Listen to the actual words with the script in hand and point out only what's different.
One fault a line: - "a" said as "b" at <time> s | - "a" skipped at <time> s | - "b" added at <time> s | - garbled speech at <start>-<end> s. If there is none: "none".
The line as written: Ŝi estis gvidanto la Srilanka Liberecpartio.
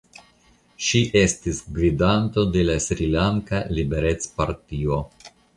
- "de" added at 2.5 s